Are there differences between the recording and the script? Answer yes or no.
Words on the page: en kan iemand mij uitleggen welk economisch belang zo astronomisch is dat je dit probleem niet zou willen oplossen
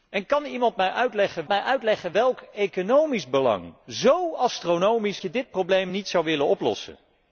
yes